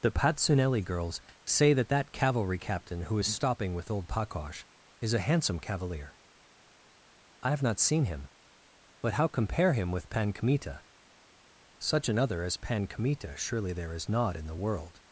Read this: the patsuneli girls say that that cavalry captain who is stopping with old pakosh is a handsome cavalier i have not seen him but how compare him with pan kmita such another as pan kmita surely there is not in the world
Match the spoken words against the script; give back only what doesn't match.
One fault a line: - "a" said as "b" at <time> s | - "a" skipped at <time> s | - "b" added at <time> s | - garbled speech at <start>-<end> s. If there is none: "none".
none